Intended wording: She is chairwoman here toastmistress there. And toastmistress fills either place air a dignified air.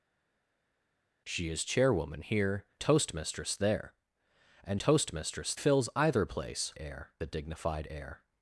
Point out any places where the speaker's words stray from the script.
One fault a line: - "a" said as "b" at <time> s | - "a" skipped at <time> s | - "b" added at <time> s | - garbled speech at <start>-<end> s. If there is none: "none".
none